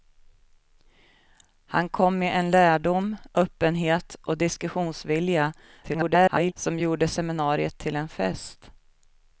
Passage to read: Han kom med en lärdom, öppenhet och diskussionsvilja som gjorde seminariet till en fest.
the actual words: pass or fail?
fail